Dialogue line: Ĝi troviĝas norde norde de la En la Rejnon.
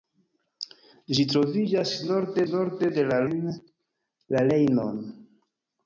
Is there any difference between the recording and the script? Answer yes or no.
no